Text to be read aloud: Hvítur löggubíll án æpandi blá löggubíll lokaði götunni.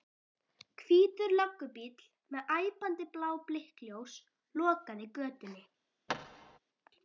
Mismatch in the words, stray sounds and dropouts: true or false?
true